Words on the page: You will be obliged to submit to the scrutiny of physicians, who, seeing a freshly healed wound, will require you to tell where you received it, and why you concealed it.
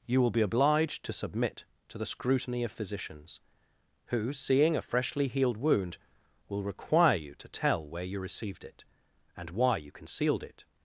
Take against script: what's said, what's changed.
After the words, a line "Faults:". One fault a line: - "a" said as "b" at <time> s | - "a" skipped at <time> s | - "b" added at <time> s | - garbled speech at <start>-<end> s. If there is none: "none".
You will be obliged to submit to the scrutiny of physicians, who, seeing a freshly healed wound, will require you to tell where you received it, and why you concealed it.
Faults:
none